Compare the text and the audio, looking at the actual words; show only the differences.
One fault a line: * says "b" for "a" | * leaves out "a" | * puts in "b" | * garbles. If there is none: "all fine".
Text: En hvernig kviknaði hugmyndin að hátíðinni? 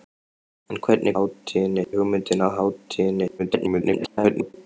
* says "hátíðinni" for "kviknaði"
* garbles